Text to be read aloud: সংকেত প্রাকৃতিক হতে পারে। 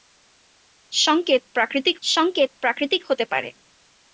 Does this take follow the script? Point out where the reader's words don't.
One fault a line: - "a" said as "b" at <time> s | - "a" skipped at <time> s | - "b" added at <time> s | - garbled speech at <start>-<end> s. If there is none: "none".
- "সংকেত প্রাকৃতিক" added at 2.0 s